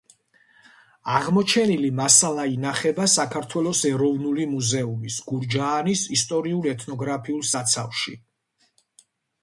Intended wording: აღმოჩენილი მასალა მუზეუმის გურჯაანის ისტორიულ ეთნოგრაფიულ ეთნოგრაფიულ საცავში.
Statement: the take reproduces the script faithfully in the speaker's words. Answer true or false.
false